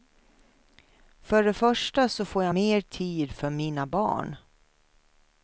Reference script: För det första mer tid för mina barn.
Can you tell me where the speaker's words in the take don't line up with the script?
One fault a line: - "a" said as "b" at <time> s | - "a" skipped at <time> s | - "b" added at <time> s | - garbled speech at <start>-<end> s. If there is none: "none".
- "så får jag" added at 2.1 s